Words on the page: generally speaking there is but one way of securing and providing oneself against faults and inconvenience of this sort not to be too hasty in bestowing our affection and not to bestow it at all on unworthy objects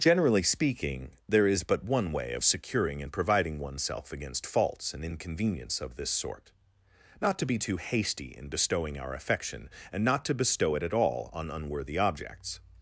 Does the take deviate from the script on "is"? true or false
false